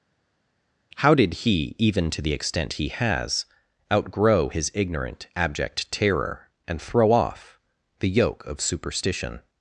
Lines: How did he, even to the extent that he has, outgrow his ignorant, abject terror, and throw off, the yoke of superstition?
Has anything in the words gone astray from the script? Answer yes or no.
yes